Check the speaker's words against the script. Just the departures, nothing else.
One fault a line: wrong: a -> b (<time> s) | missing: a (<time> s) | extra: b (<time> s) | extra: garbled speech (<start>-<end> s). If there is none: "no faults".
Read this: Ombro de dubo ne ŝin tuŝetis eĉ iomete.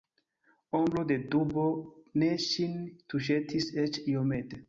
no faults